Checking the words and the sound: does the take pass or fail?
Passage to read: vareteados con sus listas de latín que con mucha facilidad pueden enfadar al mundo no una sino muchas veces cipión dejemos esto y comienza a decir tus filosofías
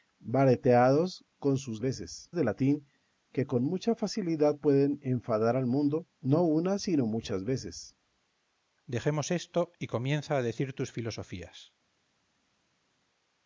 fail